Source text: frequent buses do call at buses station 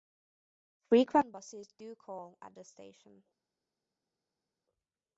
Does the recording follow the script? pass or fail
fail